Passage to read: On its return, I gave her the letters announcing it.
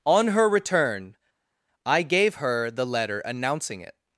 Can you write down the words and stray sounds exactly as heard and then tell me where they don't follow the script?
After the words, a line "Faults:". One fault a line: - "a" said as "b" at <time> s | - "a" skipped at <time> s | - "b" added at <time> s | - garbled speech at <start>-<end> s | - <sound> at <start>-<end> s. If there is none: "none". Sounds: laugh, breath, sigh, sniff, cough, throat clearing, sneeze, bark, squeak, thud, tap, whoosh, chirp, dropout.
On her return, I gave her the letter announcing it.
Faults:
- "its" said as "her" at 0.3 s
- "letters" said as "letter" at 2.9 s